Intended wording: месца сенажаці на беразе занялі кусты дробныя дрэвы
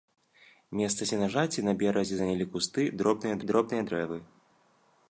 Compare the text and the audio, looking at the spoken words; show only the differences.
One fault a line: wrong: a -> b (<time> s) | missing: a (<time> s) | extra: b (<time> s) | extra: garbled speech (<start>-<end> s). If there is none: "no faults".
extra: дробныя (3.5 s)